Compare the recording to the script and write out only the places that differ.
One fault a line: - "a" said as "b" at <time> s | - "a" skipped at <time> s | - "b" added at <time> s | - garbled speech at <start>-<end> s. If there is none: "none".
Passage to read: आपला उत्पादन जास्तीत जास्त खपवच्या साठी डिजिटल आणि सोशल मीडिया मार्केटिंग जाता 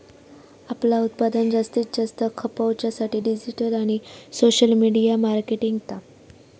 none